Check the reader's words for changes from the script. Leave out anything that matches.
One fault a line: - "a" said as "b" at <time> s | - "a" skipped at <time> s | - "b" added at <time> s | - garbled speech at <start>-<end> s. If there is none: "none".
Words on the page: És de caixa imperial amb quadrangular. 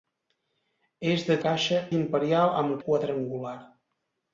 none